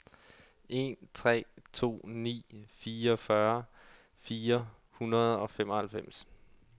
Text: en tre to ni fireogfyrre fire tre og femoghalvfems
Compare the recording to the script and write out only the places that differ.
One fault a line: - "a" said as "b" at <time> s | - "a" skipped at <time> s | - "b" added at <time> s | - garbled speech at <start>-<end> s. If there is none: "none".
- "tre" said as "hundrede" at 4.9 s